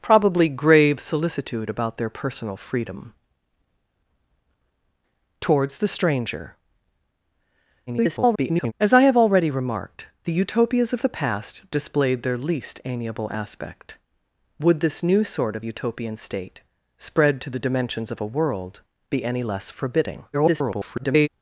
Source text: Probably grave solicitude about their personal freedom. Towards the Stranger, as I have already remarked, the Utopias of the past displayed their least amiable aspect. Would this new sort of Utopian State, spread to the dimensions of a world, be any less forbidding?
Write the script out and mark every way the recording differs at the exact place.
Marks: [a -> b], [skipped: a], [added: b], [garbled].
Probably grave solicitude about their personal freedom. Towards the Stranger, [garbled] as I have already remarked, the Utopias of the past displayed their least amiable aspect. Would this new sort of Utopian State, spread to the dimensions of a world, be any less forbidding? [garbled]